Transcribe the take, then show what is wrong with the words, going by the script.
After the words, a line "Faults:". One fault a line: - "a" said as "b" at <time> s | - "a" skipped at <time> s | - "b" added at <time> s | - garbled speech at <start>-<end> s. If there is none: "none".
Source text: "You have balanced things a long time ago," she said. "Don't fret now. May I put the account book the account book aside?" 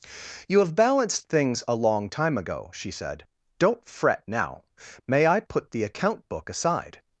"You have balanced things a long time ago," she said. "Don't fret now. May I put the account book aside?"
Faults:
- "the account book" skipped at 6.5 s